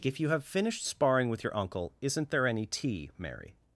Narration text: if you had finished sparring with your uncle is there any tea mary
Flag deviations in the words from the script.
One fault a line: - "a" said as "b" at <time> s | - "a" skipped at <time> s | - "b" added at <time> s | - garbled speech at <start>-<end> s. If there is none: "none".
- "had" said as "have" at 0.3 s
- "is" said as "isn't" at 2.0 s